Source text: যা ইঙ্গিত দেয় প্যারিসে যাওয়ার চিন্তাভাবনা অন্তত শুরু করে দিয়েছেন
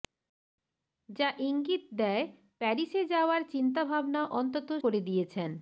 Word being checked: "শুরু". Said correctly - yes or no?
no